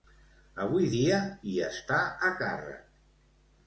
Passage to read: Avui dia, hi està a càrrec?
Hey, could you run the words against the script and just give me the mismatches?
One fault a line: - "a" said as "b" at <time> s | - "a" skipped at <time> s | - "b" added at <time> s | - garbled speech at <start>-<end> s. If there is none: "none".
none